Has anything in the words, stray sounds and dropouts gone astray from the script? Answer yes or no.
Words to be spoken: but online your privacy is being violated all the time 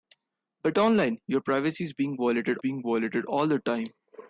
yes